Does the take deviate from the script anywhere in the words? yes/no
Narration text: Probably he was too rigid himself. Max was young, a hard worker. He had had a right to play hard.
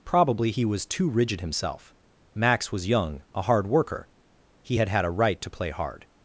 no